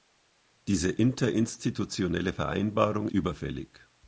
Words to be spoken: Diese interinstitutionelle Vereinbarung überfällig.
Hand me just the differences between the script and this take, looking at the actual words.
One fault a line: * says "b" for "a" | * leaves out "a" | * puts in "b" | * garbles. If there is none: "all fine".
all fine